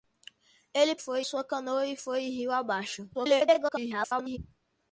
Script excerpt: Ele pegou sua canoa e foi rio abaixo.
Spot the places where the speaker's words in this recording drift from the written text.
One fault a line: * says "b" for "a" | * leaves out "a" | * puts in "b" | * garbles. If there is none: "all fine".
* says "foi" for "pegou"
* garbles